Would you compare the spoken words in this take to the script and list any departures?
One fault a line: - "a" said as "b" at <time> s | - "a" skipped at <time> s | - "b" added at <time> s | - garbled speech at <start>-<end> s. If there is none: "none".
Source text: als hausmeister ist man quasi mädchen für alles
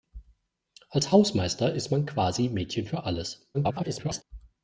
- garbled speech at 3.5-4.2 s